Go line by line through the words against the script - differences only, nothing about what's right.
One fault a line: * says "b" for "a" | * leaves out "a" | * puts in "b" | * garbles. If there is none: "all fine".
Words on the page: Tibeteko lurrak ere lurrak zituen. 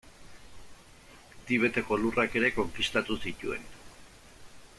* says "konkistatu" for "lurrak"